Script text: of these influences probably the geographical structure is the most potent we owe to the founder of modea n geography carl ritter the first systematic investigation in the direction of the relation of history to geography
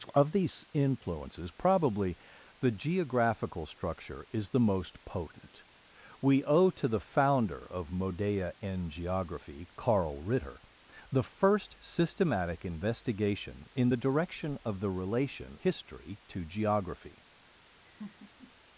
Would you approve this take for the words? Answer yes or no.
no